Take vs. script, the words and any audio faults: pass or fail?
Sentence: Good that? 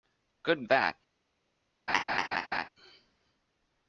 fail